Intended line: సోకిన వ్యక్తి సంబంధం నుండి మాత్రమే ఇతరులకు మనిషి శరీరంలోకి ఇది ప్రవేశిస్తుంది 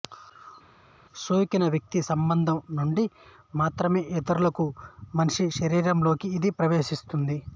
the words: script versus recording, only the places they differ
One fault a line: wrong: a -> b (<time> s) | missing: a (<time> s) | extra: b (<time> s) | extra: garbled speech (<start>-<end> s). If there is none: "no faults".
no faults